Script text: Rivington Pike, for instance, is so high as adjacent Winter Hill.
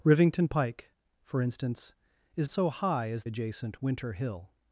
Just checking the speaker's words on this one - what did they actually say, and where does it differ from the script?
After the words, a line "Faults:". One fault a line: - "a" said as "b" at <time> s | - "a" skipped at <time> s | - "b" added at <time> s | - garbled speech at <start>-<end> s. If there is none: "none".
Rivington Pike, for instance, is so high as adjacent Winter Hill.
Faults:
none